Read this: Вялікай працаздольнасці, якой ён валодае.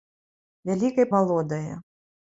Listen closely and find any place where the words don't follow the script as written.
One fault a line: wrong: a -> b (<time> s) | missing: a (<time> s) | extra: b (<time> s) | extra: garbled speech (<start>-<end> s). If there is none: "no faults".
missing: працаздольнасці якой ён (1.1 s)